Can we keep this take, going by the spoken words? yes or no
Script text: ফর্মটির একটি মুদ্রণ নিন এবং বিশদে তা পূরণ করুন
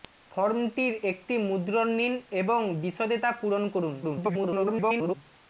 no